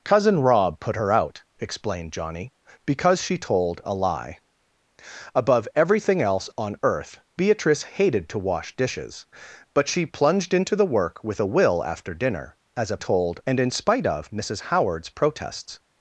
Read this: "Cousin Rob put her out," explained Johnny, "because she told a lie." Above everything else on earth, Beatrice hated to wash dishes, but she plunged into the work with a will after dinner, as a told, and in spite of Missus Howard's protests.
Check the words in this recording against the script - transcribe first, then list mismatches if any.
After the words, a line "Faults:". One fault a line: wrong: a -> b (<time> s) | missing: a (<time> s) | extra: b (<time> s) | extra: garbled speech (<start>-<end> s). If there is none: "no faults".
"Cousin Rob put her out," explained Johnny, "because she told a lie." Above everything else on earth, Beatrice hated to wash dishes, but she plunged into the work with a will after dinner, as a told, and in spite of Missus Howard's protests.
Faults:
no faults